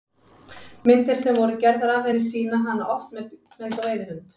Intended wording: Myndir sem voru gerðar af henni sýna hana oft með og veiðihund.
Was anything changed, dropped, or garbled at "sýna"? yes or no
no